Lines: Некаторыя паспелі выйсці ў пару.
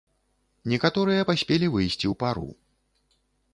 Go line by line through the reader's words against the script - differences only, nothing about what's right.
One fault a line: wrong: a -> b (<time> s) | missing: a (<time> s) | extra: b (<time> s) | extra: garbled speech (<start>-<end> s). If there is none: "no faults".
no faults